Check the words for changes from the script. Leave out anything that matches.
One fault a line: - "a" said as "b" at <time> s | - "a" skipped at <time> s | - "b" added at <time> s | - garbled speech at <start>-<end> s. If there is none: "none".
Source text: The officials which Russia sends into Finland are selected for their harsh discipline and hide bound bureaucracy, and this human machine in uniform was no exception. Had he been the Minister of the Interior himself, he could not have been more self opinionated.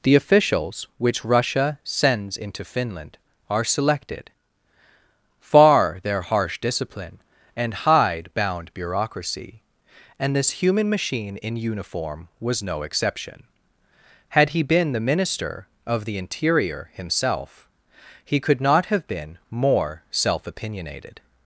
- "for" said as "far" at 5.4 s